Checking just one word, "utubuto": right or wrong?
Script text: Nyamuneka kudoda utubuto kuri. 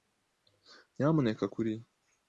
wrong